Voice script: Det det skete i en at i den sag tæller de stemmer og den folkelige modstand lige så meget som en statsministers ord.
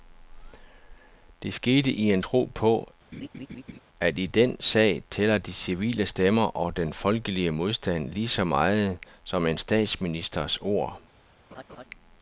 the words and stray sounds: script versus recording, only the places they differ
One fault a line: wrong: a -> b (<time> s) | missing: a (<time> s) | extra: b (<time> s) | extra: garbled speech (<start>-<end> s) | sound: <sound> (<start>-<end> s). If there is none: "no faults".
missing: det (1.5 s)
extra: tro på (2.2 s)
sound: laugh (3.1-3.8 s)
extra: civile (5.5 s)
sound: laugh (11.5-11.8 s)